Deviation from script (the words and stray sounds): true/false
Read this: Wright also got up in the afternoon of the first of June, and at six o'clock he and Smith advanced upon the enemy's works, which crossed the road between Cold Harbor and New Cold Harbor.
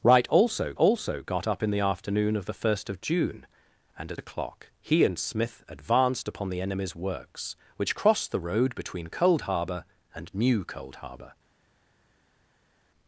true